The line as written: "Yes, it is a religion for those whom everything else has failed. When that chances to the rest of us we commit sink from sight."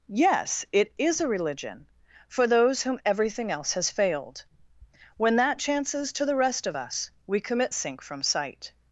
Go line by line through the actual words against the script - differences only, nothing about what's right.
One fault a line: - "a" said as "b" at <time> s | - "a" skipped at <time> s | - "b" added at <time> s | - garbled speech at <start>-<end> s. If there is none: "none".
none